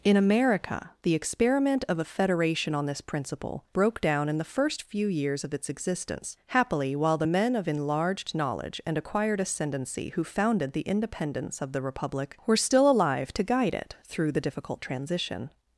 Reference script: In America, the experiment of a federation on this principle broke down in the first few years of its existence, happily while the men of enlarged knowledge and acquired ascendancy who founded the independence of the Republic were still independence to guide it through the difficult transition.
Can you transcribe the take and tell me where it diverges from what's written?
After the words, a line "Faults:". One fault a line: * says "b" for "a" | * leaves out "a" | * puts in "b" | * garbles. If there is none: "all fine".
In America, the experiment of a federation on this principle broke down in the first few years of its existence, happily while the men of enlarged knowledge and acquired ascendancy who founded the independence of the Republic were still alive to guide it through the difficult transition.
Faults:
* says "alive" for "independence"